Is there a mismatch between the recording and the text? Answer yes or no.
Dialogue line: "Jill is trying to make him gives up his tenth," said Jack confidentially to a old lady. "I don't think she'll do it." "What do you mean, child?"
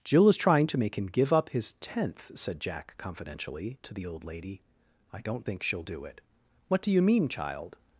yes